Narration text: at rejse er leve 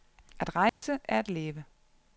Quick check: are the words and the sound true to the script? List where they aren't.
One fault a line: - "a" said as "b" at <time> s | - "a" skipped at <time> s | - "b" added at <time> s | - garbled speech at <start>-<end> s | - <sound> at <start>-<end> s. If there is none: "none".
- dropout at 0.7-0.8 s
- "at" added at 1.2 s